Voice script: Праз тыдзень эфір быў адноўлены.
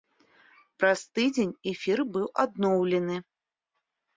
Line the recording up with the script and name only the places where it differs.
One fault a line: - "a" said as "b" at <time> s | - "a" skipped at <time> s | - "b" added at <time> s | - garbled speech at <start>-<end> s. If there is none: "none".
none